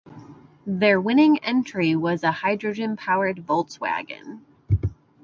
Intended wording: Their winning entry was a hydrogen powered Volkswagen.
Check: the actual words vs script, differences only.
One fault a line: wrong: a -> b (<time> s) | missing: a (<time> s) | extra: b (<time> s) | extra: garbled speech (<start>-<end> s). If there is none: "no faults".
no faults